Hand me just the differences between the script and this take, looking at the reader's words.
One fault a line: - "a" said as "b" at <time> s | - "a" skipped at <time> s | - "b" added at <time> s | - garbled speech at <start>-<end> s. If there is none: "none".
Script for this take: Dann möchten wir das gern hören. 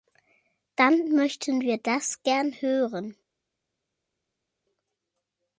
none